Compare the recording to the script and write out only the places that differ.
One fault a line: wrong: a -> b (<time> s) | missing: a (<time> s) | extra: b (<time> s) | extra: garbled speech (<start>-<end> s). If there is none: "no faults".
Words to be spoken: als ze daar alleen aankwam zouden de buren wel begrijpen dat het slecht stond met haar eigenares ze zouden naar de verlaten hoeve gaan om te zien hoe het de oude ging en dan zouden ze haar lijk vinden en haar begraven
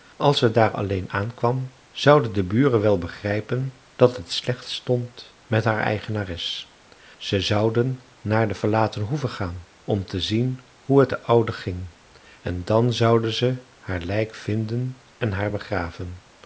no faults